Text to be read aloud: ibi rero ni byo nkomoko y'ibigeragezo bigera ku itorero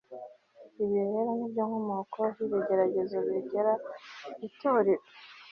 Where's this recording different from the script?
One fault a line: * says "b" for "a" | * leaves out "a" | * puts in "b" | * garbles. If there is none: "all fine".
all fine